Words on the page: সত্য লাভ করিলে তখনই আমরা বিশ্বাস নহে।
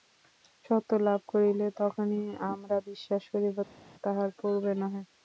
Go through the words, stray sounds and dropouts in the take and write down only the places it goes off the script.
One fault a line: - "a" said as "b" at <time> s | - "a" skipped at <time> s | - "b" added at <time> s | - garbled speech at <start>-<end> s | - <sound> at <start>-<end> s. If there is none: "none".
- "করিব তাহার পূর্বে" added at 3.3 s